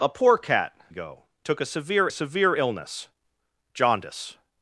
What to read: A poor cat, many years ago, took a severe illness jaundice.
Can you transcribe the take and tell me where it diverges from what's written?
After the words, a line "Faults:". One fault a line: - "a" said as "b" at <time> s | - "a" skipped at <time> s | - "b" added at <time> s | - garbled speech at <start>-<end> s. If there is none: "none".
A poor cat, ago, took a severe severe illness jaundice.
Faults:
- "many years" skipped at 0.7 s
- "severe" added at 2.1 s